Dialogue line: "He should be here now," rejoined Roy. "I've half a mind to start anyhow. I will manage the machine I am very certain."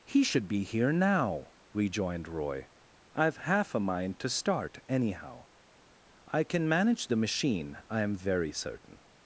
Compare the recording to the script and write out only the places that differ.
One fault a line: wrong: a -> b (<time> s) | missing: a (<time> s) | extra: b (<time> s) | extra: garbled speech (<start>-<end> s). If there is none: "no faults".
wrong: will -> can (6.4 s)